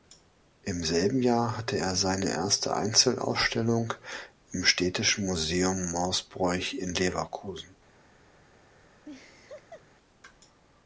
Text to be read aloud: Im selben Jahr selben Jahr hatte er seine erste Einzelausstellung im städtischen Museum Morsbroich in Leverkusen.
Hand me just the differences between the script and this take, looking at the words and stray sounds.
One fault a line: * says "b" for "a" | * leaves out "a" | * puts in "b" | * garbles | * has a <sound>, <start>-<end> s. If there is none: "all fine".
* leaves out "selben Jahr"
* has a laugh, 9.0-9.8 s